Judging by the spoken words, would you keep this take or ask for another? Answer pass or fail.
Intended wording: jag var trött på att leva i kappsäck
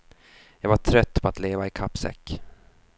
pass